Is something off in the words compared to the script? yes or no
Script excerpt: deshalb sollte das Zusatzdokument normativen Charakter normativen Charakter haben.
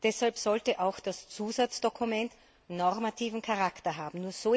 yes